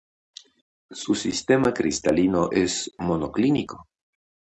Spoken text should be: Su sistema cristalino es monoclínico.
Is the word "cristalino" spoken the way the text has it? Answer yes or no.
yes